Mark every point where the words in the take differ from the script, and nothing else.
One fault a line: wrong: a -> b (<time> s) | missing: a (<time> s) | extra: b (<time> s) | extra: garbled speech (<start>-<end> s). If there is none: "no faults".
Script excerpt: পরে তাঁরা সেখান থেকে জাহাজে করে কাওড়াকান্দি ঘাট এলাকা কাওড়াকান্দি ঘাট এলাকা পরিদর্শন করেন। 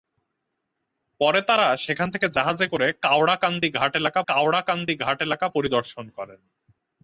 no faults